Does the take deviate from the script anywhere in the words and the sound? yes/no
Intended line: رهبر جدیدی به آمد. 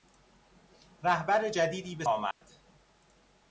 yes